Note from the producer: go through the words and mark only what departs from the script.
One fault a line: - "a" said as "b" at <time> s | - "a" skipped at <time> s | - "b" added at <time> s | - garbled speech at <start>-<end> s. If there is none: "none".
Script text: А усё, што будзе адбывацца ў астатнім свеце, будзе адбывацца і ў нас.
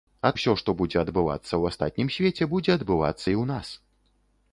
none